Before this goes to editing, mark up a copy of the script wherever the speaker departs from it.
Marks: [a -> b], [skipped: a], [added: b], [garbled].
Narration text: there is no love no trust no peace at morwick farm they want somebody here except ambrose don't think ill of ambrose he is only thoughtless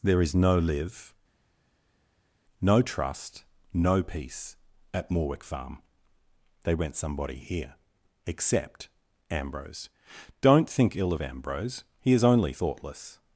there is no [love -> live] no trust no peace at morwick farm they [want -> went] somebody here except ambrose don't think ill of ambrose he is only thoughtless